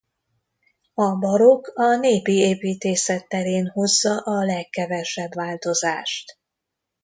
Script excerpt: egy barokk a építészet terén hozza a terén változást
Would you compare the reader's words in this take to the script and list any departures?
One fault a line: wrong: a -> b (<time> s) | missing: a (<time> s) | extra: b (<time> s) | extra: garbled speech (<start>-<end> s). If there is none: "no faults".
wrong: egy -> a (0.9 s)
extra: népi (1.9 s)
wrong: terén -> legkevesebb (4.5 s)